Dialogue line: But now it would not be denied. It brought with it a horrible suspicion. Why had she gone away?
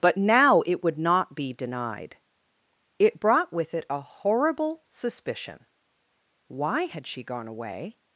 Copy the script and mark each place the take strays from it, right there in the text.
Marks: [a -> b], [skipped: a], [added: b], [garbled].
But now it would not be denied. It brought with it a horrible suspicion. Why had she gone away?